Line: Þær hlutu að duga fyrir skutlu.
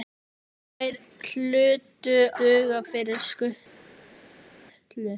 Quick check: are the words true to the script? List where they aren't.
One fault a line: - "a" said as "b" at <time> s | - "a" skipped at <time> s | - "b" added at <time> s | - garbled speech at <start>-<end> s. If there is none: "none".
- "að" skipped at 2.1 s